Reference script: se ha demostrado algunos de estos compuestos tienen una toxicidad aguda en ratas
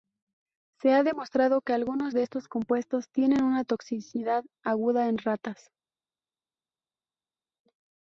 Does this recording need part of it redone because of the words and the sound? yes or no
yes